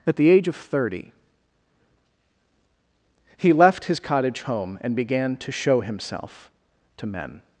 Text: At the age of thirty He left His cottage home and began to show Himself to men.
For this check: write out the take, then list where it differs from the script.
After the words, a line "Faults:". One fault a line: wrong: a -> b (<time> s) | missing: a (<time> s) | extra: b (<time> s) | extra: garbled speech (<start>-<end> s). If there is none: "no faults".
At the age of thirty He left His cottage home and began to show Himself to men.
Faults:
no faults